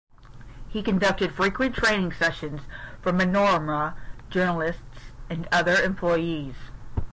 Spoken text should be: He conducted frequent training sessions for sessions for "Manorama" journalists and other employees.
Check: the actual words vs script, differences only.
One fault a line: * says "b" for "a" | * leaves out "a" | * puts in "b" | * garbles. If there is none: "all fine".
* leaves out "sessions for"